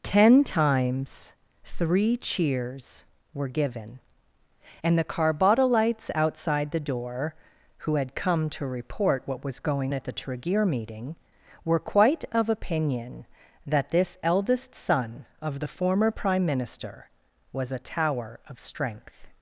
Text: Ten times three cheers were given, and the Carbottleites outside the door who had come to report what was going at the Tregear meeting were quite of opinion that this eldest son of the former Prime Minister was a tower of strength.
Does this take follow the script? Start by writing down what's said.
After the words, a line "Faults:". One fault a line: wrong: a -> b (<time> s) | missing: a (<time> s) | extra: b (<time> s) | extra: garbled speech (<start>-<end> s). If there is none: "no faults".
Ten times three cheers were given, and the Carbottleites outside the door who had come to report what was going at the Tregear meeting were quite of opinion that this eldest son of the former Prime Minister was a tower of strength.
Faults:
no faults